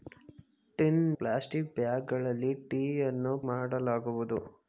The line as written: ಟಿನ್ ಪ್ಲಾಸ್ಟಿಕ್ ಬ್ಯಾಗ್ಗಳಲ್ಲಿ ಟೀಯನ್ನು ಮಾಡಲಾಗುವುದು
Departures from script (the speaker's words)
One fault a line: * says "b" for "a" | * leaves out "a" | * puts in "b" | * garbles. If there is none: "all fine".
all fine